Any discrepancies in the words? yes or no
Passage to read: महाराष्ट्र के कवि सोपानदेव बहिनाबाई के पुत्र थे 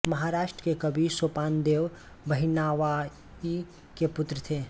no